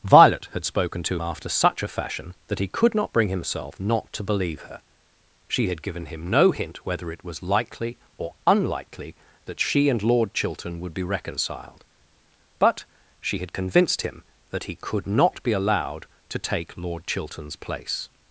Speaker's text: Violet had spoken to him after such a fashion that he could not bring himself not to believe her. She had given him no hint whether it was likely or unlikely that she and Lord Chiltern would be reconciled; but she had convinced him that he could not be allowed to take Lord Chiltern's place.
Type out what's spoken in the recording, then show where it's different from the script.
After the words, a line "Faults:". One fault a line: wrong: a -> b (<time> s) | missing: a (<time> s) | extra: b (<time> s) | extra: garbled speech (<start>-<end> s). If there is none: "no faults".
Violet had spoken to after such a fashion that he could not bring himself not to believe her. She had given him no hint whether it was likely or unlikely that she and Lord Chiltern would be reconciled; but she had convinced him that he could not be allowed to take Lord Chiltern's place.
Faults:
missing: him (1.2 s)